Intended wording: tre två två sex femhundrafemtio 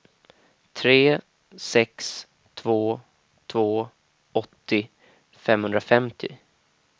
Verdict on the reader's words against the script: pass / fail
fail